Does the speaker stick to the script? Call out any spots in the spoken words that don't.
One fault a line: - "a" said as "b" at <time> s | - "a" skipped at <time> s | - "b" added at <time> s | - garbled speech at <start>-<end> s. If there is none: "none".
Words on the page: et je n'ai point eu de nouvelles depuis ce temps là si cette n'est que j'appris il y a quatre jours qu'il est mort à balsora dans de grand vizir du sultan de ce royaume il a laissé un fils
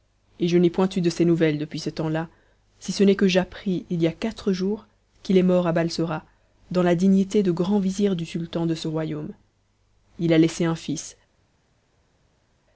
- "ses" added at 1.1 s
- "cette" said as "ce" at 2.9 s
- "la dignité" added at 6.8 s